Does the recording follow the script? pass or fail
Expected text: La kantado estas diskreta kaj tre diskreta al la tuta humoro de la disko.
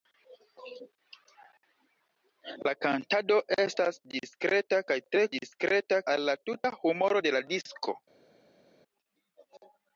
pass